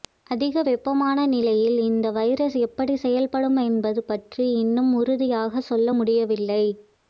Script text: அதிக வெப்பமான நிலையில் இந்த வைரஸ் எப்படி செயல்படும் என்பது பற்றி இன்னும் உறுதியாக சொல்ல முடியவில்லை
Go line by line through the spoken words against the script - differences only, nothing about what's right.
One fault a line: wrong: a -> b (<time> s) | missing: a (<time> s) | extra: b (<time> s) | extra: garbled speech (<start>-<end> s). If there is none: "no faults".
no faults